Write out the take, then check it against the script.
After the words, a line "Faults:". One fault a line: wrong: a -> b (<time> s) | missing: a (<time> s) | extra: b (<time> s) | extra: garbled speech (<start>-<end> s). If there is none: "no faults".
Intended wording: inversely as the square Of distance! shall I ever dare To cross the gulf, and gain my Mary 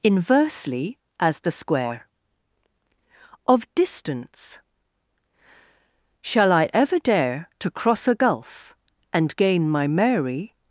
inversely as the square Of distance! shall I ever dare To cross a gulf, and gain my Mary
Faults:
wrong: the -> a (8.1 s)